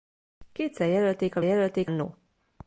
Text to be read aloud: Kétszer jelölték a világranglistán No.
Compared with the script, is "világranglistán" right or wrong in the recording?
wrong